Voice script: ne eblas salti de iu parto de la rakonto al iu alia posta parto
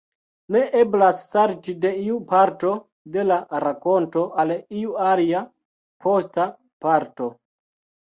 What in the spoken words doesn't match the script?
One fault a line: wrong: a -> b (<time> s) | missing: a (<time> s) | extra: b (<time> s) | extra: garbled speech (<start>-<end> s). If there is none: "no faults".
no faults